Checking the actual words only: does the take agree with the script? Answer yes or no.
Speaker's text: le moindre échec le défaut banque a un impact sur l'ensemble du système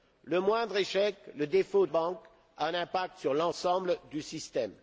yes